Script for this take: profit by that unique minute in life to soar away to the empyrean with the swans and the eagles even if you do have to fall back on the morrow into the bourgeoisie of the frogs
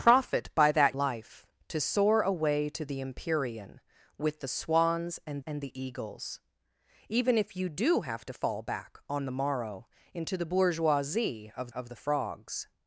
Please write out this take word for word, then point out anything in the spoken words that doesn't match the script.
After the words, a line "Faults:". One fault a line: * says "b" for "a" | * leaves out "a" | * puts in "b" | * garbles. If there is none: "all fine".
profit by that life to soar away to the empyrean with the swans and and the eagles even if you do have to fall back on the morrow into the bourgeoisie of of the frogs
Faults:
* leaves out "unique minute in"
* puts in "and"
* puts in "of"